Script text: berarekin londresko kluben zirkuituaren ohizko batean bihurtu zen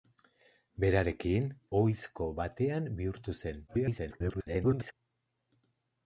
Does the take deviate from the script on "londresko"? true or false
true